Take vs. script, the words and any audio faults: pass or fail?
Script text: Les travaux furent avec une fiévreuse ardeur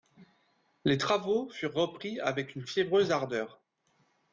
fail